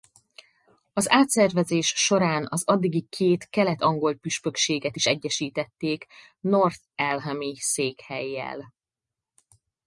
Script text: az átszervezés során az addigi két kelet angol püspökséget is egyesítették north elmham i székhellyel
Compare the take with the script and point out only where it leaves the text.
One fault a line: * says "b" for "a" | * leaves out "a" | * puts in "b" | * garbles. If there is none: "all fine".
all fine